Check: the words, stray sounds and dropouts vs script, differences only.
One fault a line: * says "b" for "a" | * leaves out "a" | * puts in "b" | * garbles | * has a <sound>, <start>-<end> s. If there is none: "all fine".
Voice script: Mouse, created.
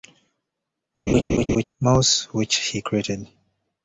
* has a laugh, 1.1-1.6 s
* puts in "which he"